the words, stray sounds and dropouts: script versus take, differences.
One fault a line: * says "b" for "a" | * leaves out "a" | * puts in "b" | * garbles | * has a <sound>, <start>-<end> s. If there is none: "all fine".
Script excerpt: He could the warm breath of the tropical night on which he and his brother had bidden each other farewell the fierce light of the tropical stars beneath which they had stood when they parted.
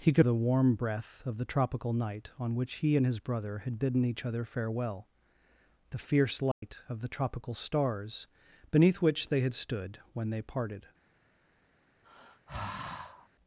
* has a dropout, 6.5-6.6 s
* has a sigh, 12.0-13.3 s